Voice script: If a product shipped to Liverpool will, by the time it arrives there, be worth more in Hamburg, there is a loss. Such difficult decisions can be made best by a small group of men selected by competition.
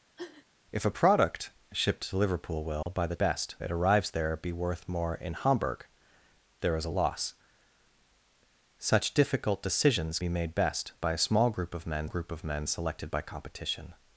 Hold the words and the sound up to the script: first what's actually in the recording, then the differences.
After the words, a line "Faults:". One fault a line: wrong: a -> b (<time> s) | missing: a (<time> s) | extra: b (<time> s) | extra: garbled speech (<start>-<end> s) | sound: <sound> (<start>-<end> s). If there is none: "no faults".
If a product shipped to Liverpool will, by the best it arrives there, be worth more in Hamburg, there is a loss. Such difficult decisions be made best by a small group of men group of men selected by competition.
Faults:
sound: sniff (0.2-0.5 s)
sound: dropout (2.8-2.9 s)
wrong: time -> best (3.2 s)
missing: can (10.2 s)
extra: group of men (12.0 s)